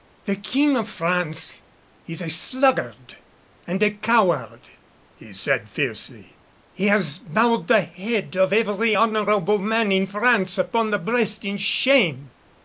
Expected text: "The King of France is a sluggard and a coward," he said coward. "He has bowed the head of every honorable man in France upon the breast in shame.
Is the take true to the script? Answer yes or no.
no